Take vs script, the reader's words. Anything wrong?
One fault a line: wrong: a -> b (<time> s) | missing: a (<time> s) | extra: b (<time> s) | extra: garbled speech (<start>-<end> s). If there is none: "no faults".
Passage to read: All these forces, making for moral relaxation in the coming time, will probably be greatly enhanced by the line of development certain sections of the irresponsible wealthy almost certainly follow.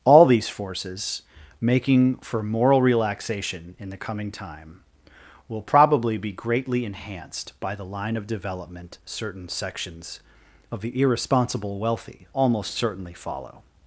no faults